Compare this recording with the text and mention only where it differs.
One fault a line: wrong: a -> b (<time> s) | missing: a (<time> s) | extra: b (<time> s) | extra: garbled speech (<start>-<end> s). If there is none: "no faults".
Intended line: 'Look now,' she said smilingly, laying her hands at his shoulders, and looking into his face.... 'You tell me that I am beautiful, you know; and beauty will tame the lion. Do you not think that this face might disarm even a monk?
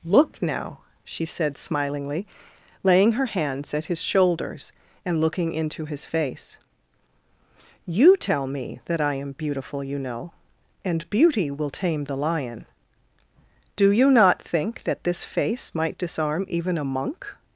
no faults